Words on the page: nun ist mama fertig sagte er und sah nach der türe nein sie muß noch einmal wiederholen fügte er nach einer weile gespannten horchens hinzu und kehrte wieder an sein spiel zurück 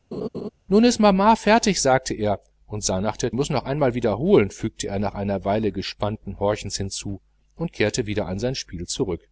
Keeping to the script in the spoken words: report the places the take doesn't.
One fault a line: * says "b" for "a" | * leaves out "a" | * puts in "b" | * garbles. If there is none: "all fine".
* leaves out "türe nein sie"